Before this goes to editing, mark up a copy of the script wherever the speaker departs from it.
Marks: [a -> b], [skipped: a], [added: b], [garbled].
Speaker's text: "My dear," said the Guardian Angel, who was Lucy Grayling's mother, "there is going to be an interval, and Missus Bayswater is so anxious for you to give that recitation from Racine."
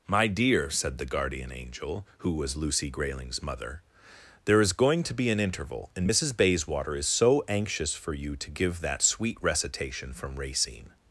"My dear," said the Guardian Angel, who was Lucy Grayling's mother, "there is going to be an interval, and Missus Bayswater is so anxious for you to give that [added: sweet] recitation from Racine."